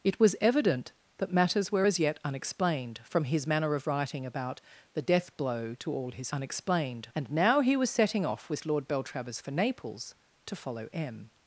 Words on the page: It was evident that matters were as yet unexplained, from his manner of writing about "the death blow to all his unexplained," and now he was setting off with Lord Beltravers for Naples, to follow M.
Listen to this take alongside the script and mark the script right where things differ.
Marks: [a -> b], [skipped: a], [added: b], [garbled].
It was evident that matters were as yet unexplained, from his manner of writing about "the death blow to all his unexplained," and now he was setting off with Lord Beltravers for Naples, to follow M.